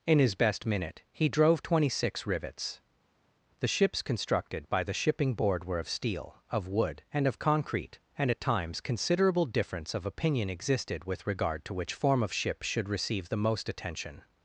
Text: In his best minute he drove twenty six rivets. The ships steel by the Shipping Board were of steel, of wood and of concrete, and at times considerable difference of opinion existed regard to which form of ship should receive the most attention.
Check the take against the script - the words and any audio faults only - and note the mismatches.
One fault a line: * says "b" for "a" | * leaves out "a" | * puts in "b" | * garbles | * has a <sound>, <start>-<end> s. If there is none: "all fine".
* says "constructed" for "steel"
* puts in "with"